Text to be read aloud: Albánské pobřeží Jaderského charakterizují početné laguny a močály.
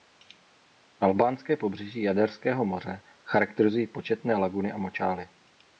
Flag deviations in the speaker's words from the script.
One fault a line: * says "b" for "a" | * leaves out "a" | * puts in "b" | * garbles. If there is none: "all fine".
* puts in "moře"